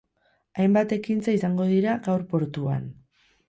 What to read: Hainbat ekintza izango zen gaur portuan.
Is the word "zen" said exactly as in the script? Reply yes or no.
no